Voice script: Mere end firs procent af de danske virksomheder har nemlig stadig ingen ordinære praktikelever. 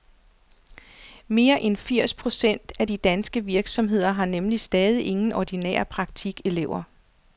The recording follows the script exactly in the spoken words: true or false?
true